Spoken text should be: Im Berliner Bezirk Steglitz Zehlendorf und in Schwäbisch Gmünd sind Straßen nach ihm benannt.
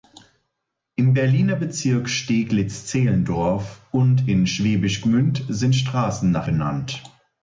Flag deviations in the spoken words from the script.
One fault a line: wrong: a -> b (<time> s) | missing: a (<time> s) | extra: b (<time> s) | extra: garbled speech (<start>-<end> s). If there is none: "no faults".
missing: ihm (6.5 s)